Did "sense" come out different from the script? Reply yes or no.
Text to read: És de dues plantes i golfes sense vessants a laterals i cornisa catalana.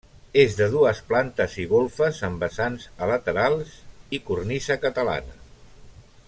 yes